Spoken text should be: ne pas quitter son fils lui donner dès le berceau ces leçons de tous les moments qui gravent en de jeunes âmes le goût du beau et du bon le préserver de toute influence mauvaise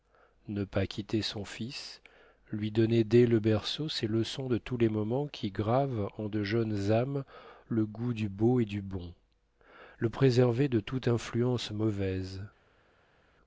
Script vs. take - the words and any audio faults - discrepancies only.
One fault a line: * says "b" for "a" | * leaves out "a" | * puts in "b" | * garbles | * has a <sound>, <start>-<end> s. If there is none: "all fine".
all fine